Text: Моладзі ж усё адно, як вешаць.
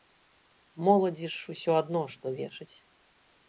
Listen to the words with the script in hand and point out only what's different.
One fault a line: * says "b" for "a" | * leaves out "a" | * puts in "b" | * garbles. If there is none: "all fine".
* says "што" for "як"